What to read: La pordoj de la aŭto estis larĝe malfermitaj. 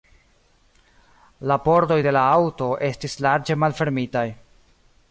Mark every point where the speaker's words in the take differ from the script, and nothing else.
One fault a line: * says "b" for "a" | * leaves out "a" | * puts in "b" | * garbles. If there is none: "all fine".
all fine